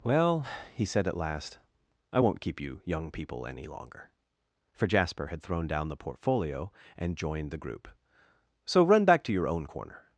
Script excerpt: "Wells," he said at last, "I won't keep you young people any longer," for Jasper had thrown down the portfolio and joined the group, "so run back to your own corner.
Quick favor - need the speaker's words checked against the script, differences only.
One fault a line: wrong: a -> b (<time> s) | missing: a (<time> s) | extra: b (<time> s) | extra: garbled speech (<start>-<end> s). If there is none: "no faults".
wrong: Wells -> Well (0.0 s)